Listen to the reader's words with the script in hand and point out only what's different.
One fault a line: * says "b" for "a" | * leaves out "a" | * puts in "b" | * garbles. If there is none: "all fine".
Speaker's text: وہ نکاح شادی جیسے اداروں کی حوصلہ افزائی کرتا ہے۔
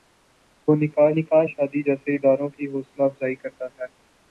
* puts in "نکاح"